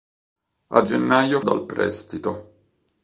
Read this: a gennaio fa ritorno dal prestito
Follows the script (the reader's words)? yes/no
no